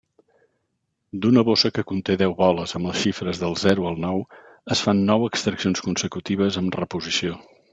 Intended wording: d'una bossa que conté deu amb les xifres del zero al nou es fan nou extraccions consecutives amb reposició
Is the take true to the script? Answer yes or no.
no